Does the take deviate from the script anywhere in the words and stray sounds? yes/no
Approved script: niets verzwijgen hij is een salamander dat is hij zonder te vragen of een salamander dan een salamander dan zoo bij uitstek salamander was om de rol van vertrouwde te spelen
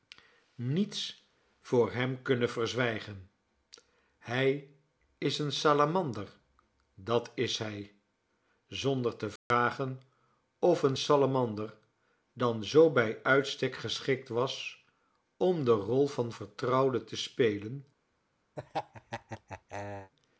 yes